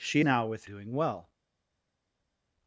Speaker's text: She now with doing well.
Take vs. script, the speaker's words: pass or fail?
pass